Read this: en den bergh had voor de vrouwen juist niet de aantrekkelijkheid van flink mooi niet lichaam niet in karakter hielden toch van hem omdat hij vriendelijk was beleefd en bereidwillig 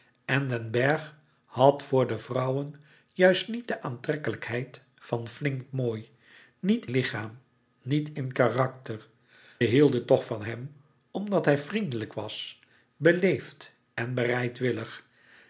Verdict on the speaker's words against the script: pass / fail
pass